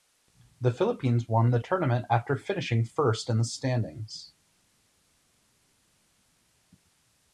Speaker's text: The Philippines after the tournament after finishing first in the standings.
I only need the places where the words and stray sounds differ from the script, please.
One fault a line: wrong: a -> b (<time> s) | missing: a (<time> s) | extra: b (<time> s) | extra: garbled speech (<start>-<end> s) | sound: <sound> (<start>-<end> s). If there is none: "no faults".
wrong: after -> won (1.3 s)